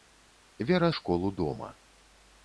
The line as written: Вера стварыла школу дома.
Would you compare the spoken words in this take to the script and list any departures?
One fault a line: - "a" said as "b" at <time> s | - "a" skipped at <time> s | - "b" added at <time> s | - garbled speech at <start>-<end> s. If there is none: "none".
- "стварыла" skipped at 0.9 s